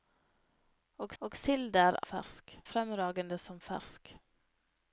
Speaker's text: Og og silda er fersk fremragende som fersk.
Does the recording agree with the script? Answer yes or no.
yes